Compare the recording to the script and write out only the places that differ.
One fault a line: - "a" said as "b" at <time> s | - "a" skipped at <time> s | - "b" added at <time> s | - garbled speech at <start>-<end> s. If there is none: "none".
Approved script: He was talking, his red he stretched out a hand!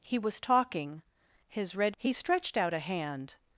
none